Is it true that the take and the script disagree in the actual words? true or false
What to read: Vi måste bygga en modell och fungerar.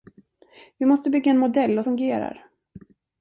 false